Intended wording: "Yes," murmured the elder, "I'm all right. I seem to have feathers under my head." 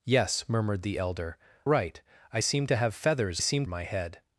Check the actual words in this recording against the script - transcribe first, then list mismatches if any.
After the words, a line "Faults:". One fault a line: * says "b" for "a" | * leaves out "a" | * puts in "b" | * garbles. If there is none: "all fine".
"Yes," murmured the elder, "Right. I seem to have feathers seem my head."
Faults:
* leaves out "I'm all"
* says "seem" for "under"